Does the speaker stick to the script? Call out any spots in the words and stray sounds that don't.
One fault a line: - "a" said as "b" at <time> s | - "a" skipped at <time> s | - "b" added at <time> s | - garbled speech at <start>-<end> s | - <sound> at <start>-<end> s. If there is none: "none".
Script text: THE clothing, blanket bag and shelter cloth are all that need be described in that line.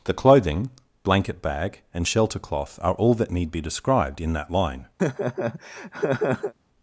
- laugh at 5.0-6.5 s